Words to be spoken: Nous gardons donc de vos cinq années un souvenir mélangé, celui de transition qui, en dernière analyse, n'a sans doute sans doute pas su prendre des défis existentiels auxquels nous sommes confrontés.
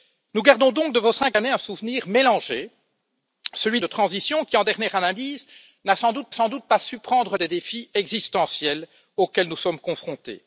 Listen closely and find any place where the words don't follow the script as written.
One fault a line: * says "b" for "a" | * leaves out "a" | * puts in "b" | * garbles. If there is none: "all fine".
all fine